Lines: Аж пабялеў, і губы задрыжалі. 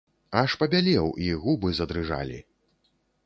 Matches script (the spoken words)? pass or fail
pass